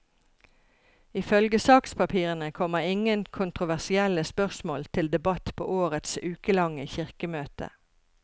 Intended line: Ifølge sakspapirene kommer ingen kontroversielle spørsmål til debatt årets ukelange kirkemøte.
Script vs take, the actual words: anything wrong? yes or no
yes